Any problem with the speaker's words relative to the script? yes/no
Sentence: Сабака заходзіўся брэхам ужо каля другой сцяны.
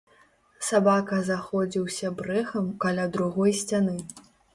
yes